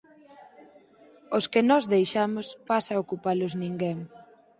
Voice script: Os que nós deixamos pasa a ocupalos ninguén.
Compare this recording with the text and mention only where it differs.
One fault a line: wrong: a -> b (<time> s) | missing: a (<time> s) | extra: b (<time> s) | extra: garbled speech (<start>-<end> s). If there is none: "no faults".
no faults